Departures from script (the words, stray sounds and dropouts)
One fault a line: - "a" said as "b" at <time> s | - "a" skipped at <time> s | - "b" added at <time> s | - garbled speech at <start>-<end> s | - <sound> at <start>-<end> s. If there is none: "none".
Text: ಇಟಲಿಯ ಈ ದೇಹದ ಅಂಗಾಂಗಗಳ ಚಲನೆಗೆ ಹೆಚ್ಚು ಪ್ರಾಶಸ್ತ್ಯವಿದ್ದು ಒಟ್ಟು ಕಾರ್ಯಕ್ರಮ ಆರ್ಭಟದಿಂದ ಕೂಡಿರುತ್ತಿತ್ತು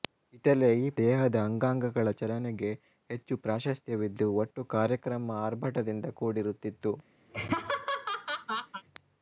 - laugh at 7.3-8.8 s